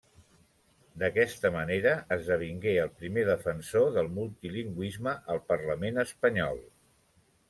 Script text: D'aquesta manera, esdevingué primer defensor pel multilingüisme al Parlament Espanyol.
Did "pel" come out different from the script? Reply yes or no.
yes